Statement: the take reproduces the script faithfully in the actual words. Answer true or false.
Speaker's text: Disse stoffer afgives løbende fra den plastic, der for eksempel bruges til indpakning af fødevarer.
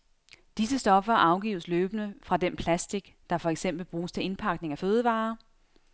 true